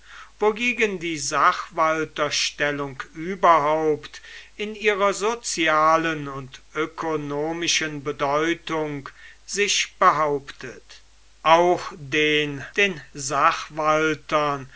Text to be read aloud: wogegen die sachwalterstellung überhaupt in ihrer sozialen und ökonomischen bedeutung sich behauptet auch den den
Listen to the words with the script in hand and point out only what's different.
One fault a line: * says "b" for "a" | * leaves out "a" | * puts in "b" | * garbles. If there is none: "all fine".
all fine